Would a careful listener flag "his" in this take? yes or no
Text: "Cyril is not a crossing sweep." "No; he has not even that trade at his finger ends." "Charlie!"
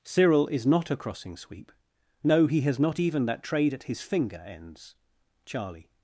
no